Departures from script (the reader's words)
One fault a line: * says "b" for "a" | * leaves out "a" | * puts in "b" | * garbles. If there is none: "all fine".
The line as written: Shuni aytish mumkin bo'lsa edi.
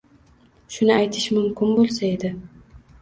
all fine